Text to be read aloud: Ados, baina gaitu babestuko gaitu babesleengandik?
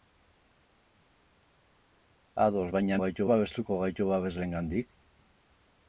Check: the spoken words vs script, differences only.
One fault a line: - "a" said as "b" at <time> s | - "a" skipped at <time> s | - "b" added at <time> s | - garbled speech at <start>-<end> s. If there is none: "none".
none